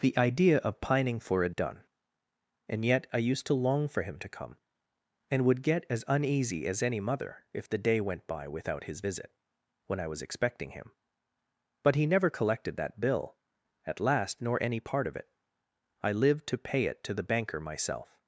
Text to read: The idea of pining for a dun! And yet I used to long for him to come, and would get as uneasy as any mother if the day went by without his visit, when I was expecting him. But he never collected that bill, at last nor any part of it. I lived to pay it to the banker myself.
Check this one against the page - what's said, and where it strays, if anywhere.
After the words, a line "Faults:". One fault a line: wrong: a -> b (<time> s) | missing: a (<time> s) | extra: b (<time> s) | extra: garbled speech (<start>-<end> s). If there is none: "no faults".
The idea of pining for it done! And yet I used to long for him to come, and would get as uneasy as any mother if the day went by without his visit, when I was expecting him. But he never collected that bill, at last nor any part of it. I lived to pay it to the banker myself.
Faults:
wrong: a dun -> it done (1.4 s)